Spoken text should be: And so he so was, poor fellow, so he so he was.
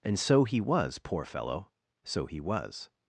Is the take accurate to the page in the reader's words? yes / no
no